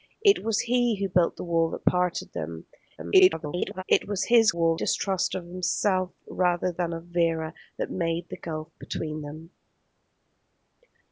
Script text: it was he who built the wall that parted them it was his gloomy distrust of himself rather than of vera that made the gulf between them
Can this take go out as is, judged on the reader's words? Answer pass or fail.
fail